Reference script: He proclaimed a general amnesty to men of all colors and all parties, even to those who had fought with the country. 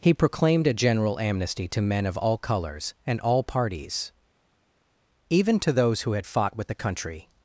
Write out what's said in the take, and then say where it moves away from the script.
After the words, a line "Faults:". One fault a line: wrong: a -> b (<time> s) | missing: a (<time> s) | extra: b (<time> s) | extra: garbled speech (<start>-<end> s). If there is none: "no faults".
He proclaimed a general amnesty to men of all colors and all parties, even to those who had fought with the country.
Faults:
no faults